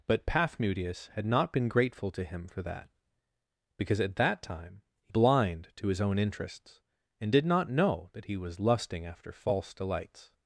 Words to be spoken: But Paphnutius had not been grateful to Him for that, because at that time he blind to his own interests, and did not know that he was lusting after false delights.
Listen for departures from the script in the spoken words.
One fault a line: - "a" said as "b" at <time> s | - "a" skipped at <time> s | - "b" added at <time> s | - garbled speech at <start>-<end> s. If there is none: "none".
none